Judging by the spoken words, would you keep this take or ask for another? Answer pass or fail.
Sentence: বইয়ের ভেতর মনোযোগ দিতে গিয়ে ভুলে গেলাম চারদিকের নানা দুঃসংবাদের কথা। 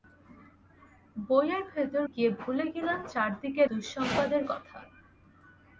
fail